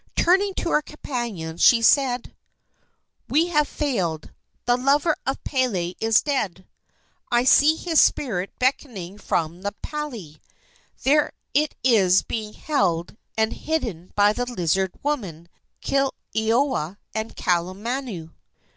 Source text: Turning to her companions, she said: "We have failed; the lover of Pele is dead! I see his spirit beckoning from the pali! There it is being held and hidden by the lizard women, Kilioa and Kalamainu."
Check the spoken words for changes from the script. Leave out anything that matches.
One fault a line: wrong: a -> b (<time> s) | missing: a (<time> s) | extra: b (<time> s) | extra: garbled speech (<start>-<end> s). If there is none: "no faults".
no faults